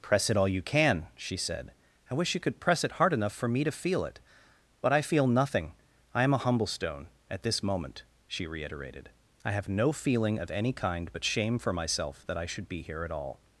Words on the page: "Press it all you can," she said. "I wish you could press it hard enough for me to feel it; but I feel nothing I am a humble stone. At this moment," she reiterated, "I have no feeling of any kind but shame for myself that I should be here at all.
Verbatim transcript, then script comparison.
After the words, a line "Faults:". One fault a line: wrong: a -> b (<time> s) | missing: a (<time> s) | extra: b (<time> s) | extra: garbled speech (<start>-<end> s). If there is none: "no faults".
"Press it all you can," she said. "I wish you could press it hard enough for me to feel it; but I feel nothing I am a humble stone. At this moment," she reiterated, "I have no feeling of any kind but shame for myself that I should be here at all.
Faults:
no faults